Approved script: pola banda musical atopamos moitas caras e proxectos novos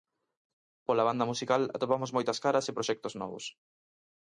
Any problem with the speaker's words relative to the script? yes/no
no